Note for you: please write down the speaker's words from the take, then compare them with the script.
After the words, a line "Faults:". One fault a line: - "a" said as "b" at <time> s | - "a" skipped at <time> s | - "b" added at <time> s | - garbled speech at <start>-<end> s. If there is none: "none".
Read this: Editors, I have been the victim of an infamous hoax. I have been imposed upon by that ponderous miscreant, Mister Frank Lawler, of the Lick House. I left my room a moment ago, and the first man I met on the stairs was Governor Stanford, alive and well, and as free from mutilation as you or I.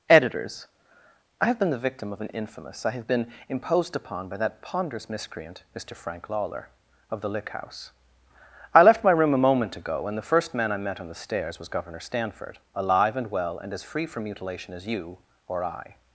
Editors, I have been the victim of an infamous. I have been imposed upon by that ponderous miscreant, Mister Frank Lawler, of the Lick House. I left my room a moment ago, and the first man I met on the stairs was Governor Stanford, alive and well, and as free from mutilation as you or I.
Faults:
- "hoax" skipped at 2.9 s